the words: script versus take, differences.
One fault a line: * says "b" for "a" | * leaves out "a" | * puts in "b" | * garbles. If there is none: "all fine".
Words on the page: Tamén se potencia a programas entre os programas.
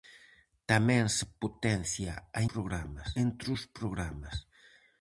all fine